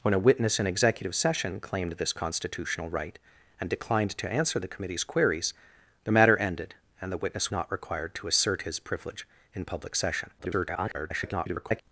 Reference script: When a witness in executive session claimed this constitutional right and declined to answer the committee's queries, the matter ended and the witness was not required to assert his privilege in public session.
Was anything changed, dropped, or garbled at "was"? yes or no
yes